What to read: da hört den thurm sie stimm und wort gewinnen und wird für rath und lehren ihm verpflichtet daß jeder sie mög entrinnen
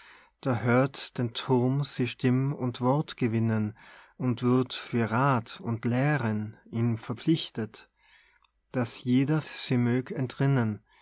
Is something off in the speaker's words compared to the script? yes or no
no